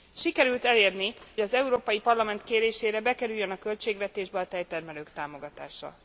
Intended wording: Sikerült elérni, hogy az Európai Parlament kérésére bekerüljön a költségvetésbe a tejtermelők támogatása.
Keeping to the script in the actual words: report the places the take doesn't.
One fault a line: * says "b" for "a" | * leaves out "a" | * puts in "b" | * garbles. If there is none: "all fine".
* leaves out "hogy"